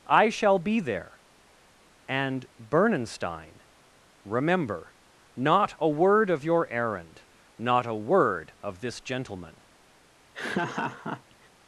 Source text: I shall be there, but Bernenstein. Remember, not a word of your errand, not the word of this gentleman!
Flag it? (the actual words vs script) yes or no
yes